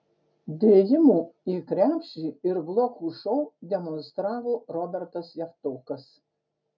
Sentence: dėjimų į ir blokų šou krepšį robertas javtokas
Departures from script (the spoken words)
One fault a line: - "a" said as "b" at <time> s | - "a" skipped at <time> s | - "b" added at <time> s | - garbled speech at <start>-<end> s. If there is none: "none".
- "krepšį" added at 1.7 s
- "krepšį" said as "demonstravo" at 3.7 s